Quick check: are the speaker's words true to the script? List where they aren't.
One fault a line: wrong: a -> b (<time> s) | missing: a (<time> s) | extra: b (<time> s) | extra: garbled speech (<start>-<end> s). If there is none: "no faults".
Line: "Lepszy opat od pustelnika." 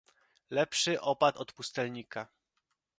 no faults